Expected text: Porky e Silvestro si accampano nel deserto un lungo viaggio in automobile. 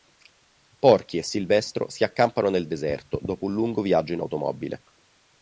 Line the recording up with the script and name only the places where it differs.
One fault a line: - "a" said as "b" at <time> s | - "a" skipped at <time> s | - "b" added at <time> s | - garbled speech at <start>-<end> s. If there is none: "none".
- "dopo" added at 3.2 s